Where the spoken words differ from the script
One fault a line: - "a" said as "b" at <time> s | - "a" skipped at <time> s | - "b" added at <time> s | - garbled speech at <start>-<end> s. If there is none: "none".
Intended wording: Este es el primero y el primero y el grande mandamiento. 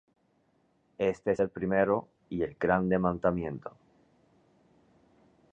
- "primero y el" skipped at 2.5 s